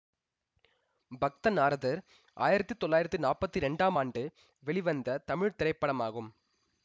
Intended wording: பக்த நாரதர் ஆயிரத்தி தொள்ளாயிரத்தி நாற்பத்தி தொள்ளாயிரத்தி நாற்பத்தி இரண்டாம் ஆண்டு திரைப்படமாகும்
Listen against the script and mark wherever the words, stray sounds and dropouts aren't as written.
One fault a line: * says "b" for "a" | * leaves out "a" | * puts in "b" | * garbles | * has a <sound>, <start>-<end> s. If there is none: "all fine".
* says "இரண்டாம் ஆண்டு வெளிவந்த தமிழ்" for "தொள்ளாயிரத்தி நாற்பத்தி இரண்டாம் ஆண்டு"